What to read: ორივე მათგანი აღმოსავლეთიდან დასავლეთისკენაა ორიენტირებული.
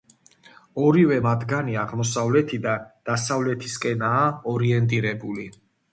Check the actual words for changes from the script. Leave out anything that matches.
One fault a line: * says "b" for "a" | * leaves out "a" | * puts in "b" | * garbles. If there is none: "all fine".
all fine